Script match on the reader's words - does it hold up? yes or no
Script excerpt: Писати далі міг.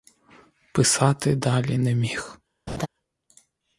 no